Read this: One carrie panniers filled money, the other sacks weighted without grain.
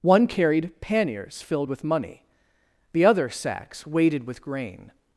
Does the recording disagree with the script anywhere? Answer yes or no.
yes